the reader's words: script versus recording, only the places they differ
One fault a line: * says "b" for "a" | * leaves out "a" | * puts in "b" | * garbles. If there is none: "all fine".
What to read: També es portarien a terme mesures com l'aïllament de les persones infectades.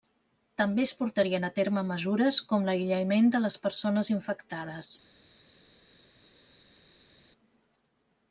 all fine